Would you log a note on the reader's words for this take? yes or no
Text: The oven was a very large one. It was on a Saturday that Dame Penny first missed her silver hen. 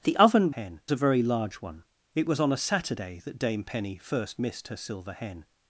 yes